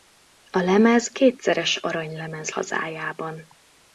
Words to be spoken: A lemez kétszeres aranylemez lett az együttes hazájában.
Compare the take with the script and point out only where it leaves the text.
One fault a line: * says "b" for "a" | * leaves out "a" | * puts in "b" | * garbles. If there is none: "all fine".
* leaves out "lett az együttes"